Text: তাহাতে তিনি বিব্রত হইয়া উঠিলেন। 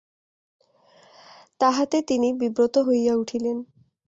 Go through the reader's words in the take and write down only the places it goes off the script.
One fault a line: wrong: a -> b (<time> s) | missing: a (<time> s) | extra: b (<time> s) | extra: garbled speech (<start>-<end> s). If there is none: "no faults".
no faults